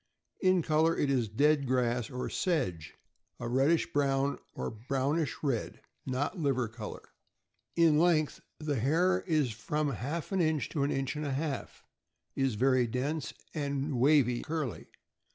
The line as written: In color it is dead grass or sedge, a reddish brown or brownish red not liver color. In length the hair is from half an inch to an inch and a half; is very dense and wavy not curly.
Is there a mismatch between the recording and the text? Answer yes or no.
yes